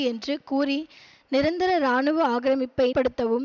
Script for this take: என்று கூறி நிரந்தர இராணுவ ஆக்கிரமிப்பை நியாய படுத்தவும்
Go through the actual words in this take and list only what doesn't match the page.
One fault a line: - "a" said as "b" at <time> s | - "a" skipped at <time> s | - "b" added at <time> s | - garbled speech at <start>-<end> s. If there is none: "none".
- "நியாய" skipped at 2.9 s